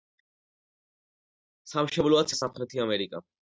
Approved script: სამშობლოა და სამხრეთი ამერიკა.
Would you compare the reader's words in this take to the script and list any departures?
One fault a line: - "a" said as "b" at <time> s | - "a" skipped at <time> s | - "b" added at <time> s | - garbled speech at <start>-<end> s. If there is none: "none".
none